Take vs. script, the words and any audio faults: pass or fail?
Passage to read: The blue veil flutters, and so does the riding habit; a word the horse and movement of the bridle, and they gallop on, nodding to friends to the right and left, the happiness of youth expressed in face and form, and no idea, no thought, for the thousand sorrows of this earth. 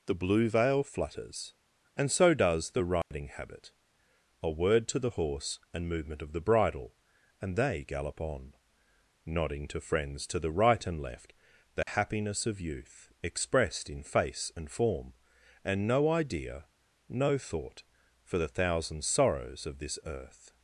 fail